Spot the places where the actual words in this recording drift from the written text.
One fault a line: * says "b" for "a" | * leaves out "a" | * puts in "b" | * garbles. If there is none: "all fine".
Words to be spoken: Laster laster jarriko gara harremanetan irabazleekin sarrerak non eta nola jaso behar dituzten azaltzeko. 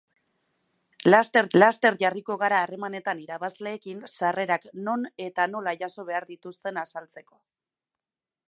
all fine